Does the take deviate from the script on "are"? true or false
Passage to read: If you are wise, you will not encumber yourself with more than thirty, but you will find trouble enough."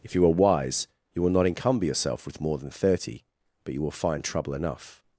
false